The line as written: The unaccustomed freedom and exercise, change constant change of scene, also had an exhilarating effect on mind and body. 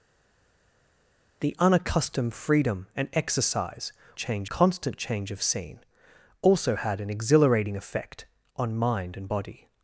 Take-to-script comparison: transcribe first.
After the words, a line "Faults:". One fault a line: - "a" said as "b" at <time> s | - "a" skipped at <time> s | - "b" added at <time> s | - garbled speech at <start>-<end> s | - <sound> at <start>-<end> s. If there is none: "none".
The unaccustomed freedom and exercise, change constant change of scene, also had an exhilarating effect on mind and body.
Faults:
none